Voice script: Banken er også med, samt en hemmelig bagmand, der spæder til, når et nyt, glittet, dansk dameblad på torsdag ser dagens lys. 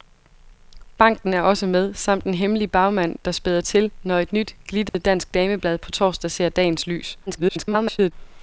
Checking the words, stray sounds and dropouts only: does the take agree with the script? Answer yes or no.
no